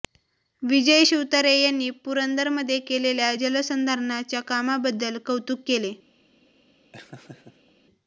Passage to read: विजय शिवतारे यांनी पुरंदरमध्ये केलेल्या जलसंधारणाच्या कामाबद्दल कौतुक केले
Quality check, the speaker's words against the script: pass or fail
pass